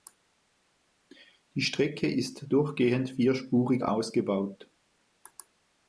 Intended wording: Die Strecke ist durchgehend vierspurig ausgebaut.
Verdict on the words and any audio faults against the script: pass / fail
pass